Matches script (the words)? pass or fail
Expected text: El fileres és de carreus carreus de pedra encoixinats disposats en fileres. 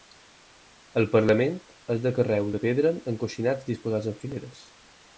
fail